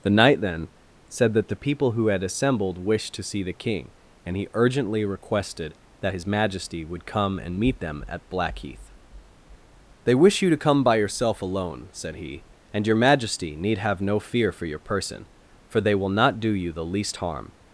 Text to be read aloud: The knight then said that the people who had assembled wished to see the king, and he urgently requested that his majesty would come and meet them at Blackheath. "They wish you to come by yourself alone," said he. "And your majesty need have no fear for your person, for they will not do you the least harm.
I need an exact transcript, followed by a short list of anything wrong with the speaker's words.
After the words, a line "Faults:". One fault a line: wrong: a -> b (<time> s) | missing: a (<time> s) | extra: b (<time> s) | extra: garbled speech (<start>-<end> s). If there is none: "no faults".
The knight then said that the people who had assembled wished to see the king, and he urgently requested that his majesty would come and meet them at Blackheath. "They wish you to come by yourself alone," said he. "And your majesty need have no fear for your person, for they will not do you the least harm.
Faults:
no faults